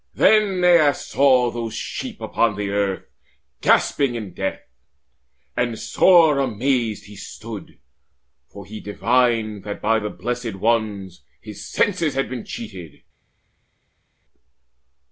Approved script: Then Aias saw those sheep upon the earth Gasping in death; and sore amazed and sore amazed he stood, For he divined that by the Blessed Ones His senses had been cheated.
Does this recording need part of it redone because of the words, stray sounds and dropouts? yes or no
yes